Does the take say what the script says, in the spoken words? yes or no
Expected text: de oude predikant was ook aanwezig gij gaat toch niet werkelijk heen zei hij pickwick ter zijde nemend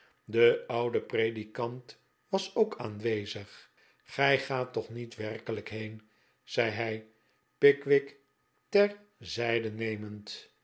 yes